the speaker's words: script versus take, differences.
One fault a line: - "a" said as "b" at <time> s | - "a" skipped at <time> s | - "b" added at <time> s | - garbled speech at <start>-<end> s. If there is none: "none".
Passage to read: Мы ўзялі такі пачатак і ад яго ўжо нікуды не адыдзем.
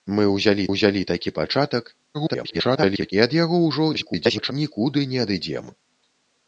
- "ўзялі" added at 0.7 s
- garbled speech at 2.1-3.1 s
- garbled speech at 3.9-4.5 s